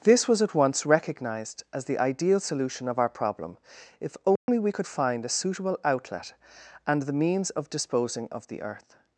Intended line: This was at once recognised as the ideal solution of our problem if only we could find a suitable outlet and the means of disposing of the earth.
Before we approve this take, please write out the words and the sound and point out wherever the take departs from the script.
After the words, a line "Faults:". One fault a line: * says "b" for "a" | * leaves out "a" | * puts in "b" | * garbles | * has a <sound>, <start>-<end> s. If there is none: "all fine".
This was at once recognised as the ideal solution of our problem if only we could find a suitable outlet and the means of disposing of the earth.
Faults:
* has a dropout, 4.4-4.5 s